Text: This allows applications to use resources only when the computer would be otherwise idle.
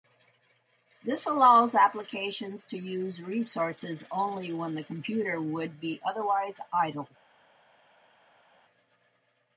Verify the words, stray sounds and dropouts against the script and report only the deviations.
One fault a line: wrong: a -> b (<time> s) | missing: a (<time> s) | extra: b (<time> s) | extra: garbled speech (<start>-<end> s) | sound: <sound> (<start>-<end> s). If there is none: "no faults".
no faults